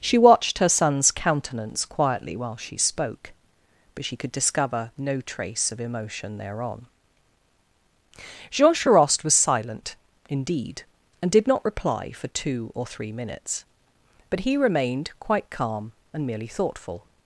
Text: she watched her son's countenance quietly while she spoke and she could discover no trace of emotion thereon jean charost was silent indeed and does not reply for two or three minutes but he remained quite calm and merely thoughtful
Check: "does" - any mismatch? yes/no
yes